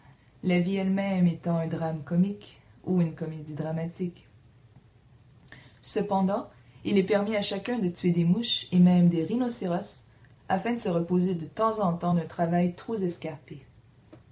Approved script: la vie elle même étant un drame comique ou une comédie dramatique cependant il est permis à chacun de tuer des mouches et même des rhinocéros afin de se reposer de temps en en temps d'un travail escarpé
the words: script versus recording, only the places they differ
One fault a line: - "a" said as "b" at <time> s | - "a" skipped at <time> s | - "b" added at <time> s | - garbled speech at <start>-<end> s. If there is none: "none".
- "en" skipped at 11.9 s
- "trop" added at 12.7 s